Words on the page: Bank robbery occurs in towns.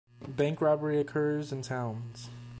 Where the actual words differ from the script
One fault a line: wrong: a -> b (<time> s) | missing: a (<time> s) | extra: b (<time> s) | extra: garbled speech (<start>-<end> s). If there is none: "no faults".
no faults